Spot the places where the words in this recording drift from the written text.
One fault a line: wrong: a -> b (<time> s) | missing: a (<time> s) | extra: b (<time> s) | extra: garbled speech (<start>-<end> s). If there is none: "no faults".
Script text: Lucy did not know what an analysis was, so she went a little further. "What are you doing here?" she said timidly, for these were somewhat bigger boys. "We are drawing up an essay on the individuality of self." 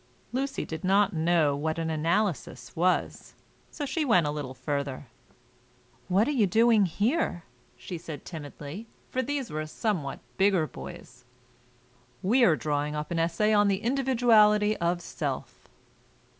no faults